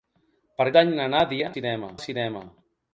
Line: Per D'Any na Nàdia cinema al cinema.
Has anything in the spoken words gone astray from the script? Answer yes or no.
no